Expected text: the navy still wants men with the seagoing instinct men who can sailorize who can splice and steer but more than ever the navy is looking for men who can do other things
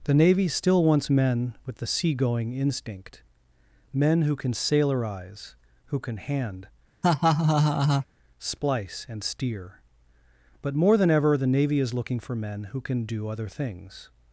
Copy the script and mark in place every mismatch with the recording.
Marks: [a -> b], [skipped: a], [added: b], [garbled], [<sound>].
the navy still wants men with the seagoing instinct men who can sailorize who can [added: hand] [laugh] splice and steer but more than ever the navy is looking for men who can do other things